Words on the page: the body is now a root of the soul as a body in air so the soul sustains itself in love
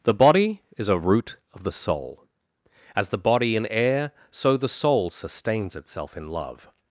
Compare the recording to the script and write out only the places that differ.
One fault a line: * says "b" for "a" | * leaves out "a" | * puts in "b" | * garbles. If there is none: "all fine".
* leaves out "now"
* says "the" for "a"